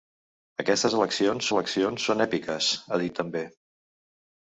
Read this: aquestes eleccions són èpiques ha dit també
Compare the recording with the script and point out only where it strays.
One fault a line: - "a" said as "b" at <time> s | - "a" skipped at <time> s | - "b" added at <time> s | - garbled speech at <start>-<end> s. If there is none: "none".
- "eleccions" added at 1.5 s